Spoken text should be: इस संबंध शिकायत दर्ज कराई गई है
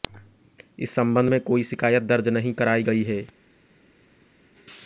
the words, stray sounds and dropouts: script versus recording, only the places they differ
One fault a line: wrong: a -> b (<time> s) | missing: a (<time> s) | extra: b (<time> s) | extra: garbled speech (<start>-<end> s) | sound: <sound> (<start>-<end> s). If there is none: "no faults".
extra: में कोई (1.3 s)
extra: नहीं (2.3 s)